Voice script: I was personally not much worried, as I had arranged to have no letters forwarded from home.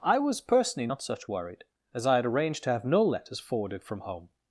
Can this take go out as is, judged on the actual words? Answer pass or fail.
fail